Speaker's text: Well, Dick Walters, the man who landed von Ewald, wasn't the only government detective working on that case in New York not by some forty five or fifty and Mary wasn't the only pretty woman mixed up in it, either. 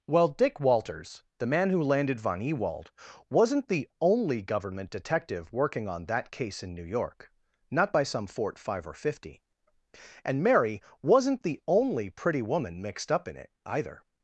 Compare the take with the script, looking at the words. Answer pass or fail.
fail